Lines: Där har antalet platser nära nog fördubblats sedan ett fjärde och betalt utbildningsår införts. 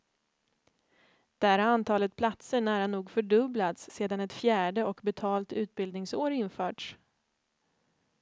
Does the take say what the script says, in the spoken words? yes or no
yes